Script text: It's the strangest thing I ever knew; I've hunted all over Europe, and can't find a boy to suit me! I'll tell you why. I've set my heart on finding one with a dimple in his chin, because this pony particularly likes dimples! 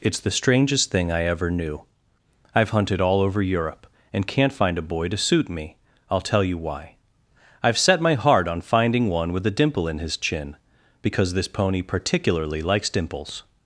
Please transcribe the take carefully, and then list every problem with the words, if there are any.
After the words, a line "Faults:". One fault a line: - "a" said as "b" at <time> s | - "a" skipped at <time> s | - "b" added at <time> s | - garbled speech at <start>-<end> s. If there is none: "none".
It's the strangest thing I ever knew; I've hunted all over Europe, and can't find a boy to suit me! I'll tell you why. I've set my heart on finding one with a dimple in his chin, because this pony particularly likes dimples!
Faults:
none